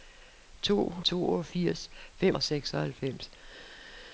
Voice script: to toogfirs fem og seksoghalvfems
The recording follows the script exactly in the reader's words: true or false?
true